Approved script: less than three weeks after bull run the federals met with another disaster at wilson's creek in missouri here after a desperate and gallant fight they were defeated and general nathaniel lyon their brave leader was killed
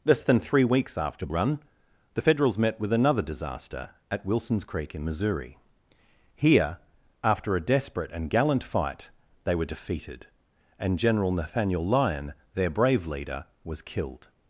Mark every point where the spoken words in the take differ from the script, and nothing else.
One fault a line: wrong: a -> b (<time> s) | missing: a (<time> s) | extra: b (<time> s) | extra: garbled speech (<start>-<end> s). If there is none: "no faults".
missing: bull (1.3 s)